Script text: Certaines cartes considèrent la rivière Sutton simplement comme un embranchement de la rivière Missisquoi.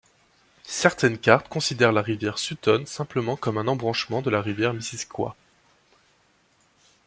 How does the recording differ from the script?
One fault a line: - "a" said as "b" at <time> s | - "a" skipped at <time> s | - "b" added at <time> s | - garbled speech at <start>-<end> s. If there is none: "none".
none